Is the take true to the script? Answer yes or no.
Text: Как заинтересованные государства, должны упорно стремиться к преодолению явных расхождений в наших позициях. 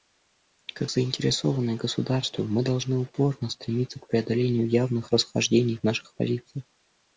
no